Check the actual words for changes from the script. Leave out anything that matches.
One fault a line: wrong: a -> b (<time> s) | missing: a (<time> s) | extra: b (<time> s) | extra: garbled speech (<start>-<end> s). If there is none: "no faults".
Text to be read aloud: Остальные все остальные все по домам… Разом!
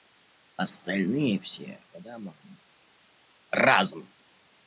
missing: остальные все (1.8 s)